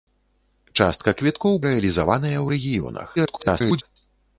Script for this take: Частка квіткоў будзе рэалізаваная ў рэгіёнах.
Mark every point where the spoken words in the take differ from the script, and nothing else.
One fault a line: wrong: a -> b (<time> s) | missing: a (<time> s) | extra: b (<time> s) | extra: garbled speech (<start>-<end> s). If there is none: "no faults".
missing: будзе (1.6 s)
extra: garbled speech (3.2-3.8 s)